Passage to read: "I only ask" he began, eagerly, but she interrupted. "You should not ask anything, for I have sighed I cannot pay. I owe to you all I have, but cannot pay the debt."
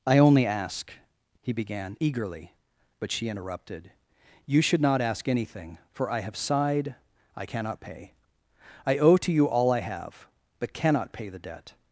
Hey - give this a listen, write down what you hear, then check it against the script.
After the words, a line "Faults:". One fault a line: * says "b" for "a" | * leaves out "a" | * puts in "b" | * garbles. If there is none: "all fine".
"I only ask" he began, eagerly, but she interrupted. "You should not ask anything, for I have sighed I cannot pay. I owe to you all I have, but cannot pay the debt."
Faults:
all fine